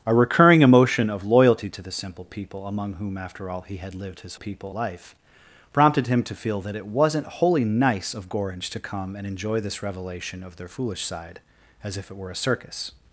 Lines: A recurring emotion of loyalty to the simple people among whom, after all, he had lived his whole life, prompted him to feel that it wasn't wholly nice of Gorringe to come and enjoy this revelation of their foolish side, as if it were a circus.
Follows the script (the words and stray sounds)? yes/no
no